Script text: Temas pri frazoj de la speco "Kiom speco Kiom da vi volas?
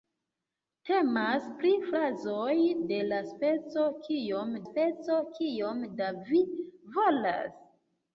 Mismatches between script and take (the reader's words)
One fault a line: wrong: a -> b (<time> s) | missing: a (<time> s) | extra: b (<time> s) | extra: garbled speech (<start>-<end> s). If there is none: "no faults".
no faults